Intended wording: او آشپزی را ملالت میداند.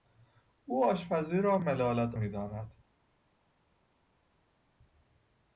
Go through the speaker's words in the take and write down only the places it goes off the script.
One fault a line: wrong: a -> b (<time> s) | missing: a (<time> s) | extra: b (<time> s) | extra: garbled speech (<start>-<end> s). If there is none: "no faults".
no faults